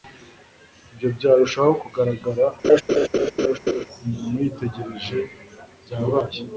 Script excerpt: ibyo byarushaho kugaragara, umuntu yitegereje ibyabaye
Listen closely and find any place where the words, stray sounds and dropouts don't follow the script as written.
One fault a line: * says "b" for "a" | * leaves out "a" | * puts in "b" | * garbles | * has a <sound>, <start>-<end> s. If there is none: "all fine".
* has a laugh, 2.6-3.9 s